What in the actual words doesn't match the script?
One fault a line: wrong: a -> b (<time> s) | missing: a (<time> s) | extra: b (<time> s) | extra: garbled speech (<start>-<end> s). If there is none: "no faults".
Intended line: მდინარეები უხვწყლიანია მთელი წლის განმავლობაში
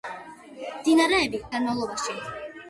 missing: უხვწყლიანია მთელი წლის (1.4 s)